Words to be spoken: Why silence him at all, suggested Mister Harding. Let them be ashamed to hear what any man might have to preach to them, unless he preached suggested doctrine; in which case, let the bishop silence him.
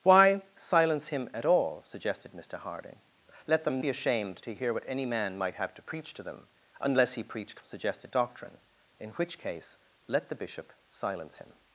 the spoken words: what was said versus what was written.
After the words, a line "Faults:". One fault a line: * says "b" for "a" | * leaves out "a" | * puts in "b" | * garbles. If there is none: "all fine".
Why silence him at all, suggested Mister Harding. Let them be ashamed to hear what any man might have to preach to them, unless he preached suggested doctrine; in which case, let the bishop silence him.
Faults:
all fine